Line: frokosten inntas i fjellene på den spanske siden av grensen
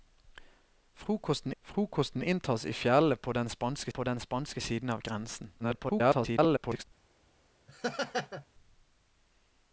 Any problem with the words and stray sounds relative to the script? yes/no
yes